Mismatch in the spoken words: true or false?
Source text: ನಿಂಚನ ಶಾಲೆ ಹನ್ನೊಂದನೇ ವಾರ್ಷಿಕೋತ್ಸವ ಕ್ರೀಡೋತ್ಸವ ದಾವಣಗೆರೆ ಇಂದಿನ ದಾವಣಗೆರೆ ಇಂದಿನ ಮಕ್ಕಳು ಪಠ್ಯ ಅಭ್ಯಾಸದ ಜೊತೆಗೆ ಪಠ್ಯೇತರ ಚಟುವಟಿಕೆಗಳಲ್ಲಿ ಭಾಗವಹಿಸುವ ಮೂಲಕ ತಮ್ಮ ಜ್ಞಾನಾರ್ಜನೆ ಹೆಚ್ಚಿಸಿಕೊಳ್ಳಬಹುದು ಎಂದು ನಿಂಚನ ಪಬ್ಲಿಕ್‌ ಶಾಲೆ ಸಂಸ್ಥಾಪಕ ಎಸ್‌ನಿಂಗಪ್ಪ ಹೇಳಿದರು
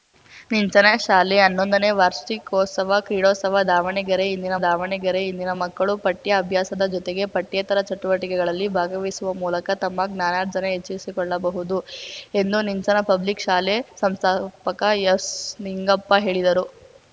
false